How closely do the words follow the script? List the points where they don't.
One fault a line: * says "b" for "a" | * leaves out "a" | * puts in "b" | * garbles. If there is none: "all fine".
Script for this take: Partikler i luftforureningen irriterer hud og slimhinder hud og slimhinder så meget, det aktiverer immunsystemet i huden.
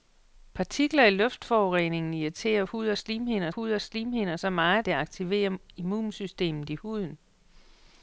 all fine